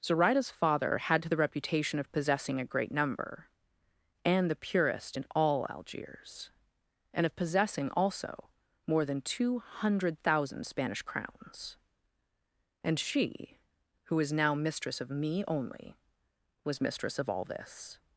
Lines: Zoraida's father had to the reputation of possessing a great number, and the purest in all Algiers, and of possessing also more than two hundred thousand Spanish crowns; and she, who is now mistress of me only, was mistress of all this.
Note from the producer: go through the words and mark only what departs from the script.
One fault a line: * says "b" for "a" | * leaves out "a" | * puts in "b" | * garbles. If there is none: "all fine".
all fine